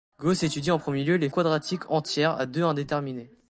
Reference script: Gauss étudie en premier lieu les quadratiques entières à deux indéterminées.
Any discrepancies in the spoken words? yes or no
no